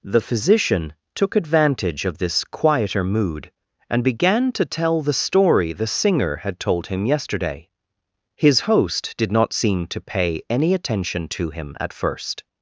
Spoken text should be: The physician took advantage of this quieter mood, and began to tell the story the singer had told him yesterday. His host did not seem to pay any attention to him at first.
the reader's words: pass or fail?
pass